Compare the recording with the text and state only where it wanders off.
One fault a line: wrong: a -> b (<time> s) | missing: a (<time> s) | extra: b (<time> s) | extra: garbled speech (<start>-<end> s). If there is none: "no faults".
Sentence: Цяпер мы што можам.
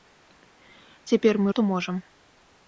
no faults